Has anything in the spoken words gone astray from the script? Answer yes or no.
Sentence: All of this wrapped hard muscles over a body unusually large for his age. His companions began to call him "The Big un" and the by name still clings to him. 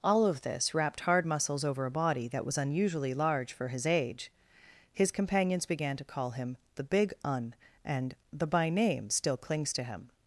yes